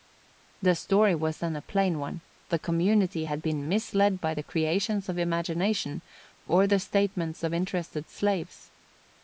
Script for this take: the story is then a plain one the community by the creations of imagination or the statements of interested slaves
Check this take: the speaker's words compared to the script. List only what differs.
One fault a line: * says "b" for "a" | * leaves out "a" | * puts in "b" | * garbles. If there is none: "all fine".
* says "was" for "is"
* puts in "had been misled"